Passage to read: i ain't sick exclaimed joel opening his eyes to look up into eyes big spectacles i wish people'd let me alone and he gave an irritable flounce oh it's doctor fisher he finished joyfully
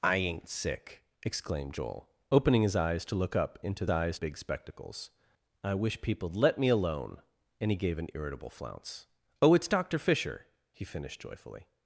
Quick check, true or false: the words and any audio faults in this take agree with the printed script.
true